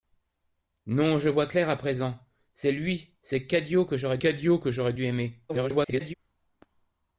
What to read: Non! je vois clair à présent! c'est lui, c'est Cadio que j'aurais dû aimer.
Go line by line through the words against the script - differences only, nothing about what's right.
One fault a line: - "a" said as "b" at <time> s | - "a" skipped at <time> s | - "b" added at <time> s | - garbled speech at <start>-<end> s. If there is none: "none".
- "Cadio que j'aurais" added at 4.2 s
- garbled speech at 5.5-6.1 s